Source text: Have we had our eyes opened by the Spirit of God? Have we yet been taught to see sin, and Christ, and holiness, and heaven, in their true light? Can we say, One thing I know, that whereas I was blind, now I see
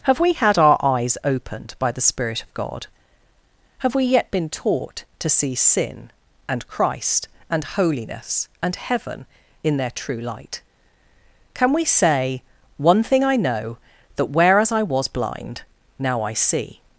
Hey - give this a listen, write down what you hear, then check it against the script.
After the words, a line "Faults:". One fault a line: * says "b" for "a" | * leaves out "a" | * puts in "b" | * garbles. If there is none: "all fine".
Have we had our eyes opened by the Spirit of God? Have we yet been taught to see sin, and Christ, and holiness, and heaven, in their true light? Can we say, One thing I know, that whereas I was blind, now I see
Faults:
all fine